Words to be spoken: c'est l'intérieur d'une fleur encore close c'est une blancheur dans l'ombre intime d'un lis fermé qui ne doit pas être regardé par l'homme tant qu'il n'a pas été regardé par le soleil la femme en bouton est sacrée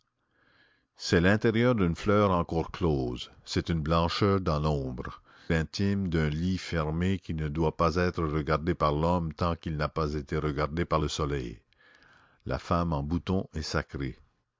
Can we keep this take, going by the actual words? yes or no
yes